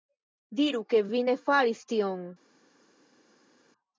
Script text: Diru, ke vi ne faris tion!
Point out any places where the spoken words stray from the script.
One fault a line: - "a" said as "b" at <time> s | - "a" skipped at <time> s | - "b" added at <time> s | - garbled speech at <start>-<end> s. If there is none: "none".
none